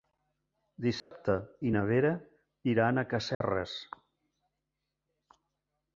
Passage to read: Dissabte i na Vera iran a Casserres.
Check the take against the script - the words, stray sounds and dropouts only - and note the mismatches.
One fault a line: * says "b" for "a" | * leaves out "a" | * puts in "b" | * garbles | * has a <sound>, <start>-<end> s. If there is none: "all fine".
* has a dropout, 1.0-1.1 s
* has a dropout, 3.3-3.4 s